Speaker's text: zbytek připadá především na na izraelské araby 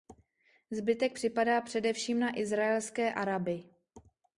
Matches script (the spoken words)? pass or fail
fail